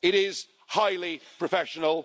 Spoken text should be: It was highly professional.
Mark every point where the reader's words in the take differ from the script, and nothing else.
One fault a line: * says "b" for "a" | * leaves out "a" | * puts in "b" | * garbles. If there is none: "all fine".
* says "is" for "was"